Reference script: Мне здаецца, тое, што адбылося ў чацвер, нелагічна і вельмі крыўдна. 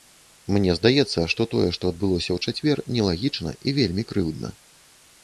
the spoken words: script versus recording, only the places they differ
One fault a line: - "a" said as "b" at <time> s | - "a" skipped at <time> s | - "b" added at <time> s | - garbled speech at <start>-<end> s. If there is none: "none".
- "што" added at 1.3 s